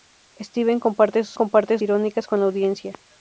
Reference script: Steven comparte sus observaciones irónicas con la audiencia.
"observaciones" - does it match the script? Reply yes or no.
no